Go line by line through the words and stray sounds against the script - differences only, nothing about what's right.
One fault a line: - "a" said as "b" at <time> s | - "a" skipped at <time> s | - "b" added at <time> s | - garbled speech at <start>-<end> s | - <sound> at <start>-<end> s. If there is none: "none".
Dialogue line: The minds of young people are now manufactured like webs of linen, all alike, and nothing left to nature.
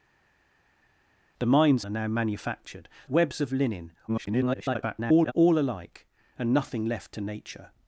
- "of young people" skipped at 1.8 s
- "like" skipped at 2.9 s
- garbled speech at 4.1-5.3 s